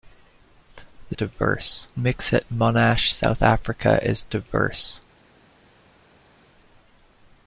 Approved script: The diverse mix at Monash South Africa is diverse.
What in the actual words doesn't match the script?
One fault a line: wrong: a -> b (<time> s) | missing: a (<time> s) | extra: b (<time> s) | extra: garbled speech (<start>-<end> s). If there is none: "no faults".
no faults